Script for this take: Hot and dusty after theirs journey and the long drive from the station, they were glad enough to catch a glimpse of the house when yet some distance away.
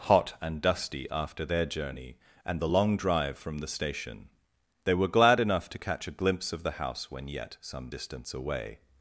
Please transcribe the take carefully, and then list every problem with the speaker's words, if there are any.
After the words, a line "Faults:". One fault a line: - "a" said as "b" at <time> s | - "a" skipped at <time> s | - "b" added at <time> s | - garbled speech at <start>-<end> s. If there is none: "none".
Hot and dusty after their journey and the long drive from the station, they were glad enough to catch a glimpse of the house when yet some distance away.
Faults:
- "theirs" said as "their" at 1.4 s